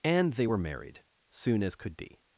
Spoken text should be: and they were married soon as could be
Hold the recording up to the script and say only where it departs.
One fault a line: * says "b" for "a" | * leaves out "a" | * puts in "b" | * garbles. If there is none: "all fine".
all fine